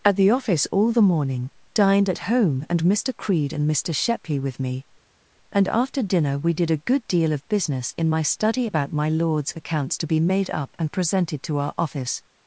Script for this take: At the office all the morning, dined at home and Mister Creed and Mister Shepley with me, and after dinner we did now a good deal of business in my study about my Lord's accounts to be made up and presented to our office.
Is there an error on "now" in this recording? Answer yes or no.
yes